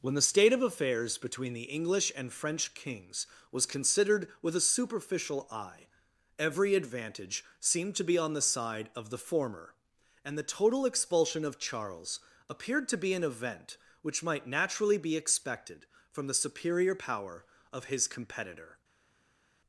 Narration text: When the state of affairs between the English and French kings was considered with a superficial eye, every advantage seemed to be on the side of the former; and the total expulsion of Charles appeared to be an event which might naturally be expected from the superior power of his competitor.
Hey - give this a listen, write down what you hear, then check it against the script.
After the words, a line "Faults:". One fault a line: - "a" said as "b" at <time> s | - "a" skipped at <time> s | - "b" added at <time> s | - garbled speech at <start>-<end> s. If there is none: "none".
When the state of affairs between the English and French kings was considered with a superficial eye, every advantage seemed to be on the side of the former; and the total expulsion of Charles appeared to be an event which might naturally be expected from the superior power of his competitor.
Faults:
none